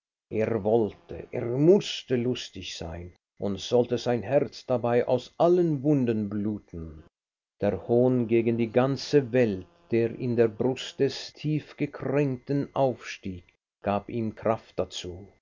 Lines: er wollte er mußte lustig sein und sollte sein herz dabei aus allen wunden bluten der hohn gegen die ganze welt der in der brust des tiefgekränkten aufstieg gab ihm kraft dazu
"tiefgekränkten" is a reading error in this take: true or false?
false